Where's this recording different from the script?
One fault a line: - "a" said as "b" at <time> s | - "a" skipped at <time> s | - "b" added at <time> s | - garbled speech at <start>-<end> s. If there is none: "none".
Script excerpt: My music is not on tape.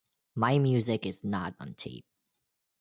none